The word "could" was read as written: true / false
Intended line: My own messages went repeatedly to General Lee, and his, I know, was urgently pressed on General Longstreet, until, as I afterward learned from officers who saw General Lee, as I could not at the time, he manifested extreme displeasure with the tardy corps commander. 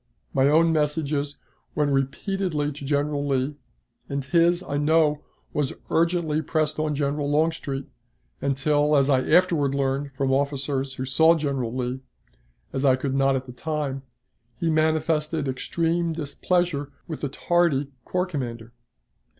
true